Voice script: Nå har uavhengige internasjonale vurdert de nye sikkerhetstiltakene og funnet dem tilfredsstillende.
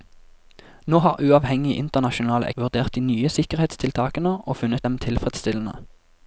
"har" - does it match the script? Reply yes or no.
yes